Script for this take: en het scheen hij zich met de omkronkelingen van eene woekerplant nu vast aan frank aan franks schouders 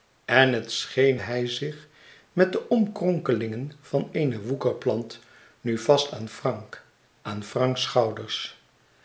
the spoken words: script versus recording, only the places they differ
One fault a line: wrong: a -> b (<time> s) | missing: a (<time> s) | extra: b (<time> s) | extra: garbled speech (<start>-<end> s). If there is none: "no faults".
no faults